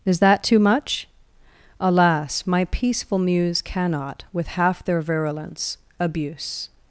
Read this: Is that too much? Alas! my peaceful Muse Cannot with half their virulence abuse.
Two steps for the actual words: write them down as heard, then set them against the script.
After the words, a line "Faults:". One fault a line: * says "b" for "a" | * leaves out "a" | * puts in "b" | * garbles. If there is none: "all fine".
Is that too much? Alas! my peaceful Muse Cannot with half their virulence abuse.
Faults:
all fine